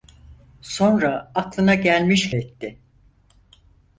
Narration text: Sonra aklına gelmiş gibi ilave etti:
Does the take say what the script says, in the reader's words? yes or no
no